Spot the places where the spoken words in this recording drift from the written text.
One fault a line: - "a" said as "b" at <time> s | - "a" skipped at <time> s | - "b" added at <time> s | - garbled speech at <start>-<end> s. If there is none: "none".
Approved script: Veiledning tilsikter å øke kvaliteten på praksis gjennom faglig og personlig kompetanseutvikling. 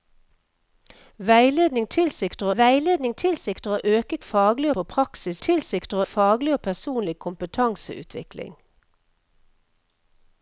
- "veiledning tilsikter" added at 2.6 s
- "kvaliteten" said as "faglig" at 4.2 s
- "gjennom" said as "tilsikter" at 5.5 s